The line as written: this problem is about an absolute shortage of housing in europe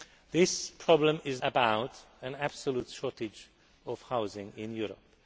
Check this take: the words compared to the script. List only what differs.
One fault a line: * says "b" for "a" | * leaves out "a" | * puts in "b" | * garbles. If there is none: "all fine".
all fine